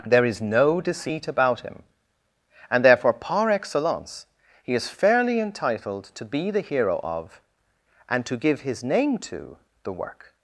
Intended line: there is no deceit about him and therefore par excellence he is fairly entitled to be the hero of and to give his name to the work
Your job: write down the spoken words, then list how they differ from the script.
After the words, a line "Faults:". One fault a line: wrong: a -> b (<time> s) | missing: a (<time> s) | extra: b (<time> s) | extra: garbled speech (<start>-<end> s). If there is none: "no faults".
there is no deceit about him and therefore par excellence he is fairly entitled to be the hero of and to give his name to the work
Faults:
no faults